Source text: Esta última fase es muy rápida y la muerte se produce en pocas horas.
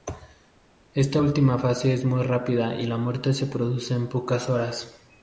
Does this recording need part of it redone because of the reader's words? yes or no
no